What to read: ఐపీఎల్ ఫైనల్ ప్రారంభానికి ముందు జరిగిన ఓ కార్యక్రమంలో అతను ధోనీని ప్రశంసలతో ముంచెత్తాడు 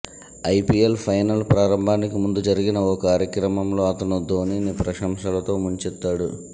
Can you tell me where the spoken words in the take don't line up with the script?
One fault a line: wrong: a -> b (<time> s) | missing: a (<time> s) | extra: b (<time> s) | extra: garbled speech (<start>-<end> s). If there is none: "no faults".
no faults